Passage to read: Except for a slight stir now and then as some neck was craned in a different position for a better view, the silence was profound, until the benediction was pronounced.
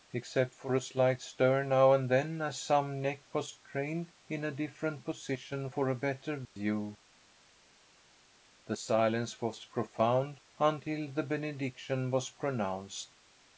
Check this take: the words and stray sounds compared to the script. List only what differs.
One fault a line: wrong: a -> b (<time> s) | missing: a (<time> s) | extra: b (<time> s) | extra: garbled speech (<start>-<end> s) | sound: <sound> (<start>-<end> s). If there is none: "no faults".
no faults